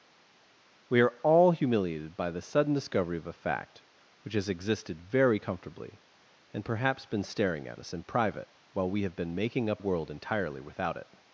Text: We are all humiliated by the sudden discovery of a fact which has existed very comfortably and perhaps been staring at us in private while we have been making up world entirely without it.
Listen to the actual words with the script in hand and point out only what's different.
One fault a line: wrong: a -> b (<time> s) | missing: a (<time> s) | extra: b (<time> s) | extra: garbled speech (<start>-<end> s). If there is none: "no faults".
no faults